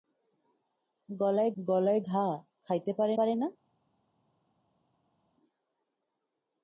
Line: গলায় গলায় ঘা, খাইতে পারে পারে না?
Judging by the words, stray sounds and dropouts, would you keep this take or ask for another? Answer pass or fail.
pass